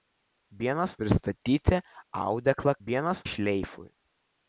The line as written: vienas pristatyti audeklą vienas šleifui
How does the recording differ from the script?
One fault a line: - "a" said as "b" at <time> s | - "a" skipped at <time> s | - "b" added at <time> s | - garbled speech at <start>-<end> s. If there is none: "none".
none